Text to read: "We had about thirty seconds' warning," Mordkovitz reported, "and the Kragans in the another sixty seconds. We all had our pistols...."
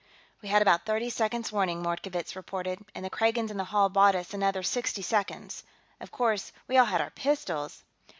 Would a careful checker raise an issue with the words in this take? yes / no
yes